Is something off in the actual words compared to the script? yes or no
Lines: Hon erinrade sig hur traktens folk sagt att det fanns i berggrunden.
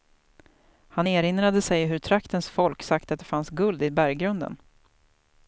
yes